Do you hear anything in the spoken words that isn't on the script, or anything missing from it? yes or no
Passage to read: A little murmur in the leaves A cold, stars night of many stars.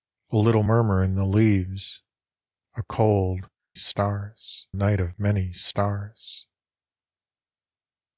no